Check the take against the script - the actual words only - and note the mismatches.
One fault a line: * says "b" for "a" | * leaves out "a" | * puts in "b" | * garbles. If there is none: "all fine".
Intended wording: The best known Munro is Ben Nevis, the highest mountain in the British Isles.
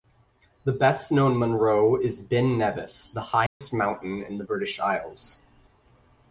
all fine